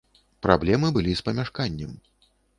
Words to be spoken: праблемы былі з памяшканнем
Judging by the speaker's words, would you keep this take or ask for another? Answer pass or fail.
pass